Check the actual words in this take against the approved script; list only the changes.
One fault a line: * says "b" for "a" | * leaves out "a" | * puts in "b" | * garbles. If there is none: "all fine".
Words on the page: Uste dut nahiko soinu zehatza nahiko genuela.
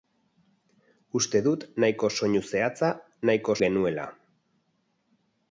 all fine